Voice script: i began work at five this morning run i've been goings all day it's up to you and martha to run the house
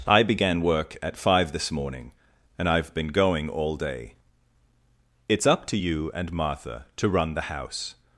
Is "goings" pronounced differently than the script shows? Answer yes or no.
yes